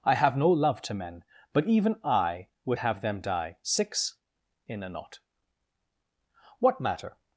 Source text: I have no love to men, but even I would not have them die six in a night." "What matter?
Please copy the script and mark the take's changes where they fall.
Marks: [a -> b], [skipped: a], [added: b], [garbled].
I have no love to men, but even I would [skipped: not] have them die six in a [night." -> knot] "What matter?